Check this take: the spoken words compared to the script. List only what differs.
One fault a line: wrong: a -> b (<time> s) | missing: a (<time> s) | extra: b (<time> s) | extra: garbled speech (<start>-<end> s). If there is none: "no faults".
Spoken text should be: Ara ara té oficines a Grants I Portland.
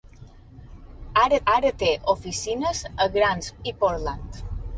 no faults